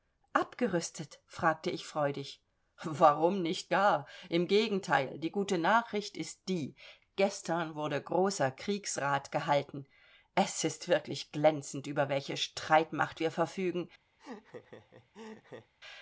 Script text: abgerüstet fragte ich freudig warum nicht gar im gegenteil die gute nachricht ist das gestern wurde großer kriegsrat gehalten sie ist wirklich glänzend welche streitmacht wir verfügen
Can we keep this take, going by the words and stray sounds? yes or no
no